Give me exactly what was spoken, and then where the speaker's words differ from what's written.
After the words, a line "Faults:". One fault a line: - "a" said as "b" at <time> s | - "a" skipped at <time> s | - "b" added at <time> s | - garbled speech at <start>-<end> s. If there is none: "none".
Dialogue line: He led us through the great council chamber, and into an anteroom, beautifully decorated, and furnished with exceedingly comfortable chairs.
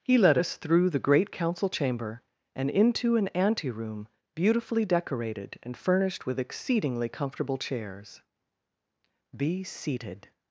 He led us through the great council chamber, and into an anteroom, beautifully decorated, and furnished with exceedingly comfortable chairs. "Be seated
Faults:
- "Be seated" added at 9.3 s